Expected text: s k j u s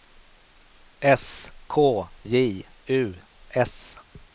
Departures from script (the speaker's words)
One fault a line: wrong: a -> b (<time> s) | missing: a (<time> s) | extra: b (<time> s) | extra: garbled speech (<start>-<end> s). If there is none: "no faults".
no faults